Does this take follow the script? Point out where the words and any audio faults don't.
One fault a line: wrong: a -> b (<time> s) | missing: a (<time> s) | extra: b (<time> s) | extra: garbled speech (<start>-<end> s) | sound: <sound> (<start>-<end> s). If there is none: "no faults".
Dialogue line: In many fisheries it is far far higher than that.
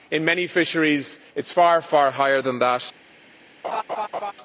sound: laugh (3.6-4.3 s)